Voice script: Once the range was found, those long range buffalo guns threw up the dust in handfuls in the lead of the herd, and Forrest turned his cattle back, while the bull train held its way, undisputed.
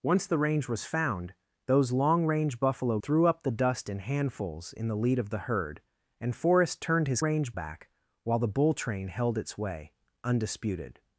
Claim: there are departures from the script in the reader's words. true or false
true